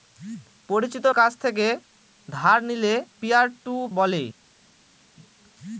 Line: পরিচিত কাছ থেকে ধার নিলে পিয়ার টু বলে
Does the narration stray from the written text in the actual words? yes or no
no